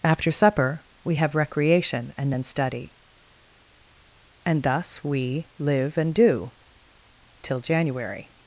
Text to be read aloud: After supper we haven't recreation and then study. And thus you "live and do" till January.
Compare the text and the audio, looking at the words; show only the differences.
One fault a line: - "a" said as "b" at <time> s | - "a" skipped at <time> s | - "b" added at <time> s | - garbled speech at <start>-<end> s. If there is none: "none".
- "haven't" said as "have" at 1.1 s
- "you" said as "we" at 5.0 s